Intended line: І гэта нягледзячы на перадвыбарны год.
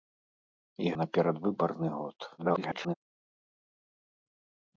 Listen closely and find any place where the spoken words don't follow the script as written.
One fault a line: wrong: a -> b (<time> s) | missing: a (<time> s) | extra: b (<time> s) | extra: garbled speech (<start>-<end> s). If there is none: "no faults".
missing: гэта нягледзячы (0.9 s)
extra: garbled speech (2.4-3.0 s)